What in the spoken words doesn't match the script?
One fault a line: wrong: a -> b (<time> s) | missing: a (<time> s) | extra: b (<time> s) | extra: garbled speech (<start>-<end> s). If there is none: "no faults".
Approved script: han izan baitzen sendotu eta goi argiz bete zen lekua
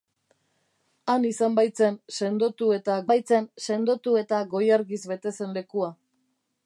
extra: baitzen sendotu eta (3.1 s)